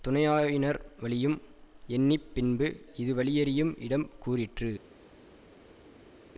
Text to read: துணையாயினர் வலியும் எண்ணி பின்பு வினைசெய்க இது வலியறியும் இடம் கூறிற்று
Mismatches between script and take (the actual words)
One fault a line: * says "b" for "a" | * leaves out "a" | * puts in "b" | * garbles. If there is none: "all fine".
* leaves out "வினைசெய்க"